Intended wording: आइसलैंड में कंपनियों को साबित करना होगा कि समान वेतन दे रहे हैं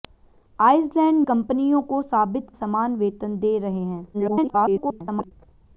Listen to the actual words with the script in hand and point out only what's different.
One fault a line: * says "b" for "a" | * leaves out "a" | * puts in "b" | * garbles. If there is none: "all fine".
* leaves out "में"
* leaves out "करना होगा कि"
* garbles